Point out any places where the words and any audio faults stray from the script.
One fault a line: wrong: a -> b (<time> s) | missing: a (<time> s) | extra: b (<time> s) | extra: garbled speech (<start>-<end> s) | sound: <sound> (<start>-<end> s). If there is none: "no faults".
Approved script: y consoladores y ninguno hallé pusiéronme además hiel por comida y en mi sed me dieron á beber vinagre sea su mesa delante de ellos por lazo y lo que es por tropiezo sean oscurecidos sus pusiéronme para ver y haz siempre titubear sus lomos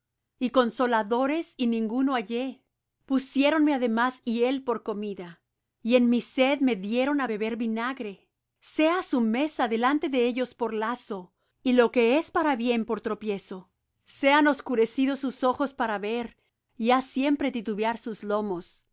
extra: para bien (12.3 s)
wrong: pusiéronme -> ojos (15.4 s)